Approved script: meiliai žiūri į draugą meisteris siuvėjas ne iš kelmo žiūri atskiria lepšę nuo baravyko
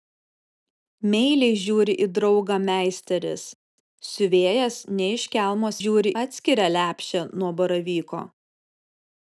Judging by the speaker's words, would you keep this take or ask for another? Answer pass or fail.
pass